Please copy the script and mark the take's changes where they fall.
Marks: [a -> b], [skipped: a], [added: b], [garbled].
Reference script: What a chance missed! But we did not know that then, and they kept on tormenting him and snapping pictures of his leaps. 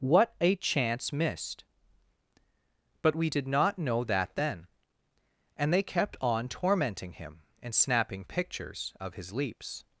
What a chance missed! But we did not know that then, and they kept on tormenting him and snapping pictures of his leaps.